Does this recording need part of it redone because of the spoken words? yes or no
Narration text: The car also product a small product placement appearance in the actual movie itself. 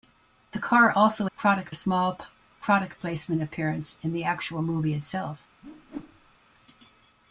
no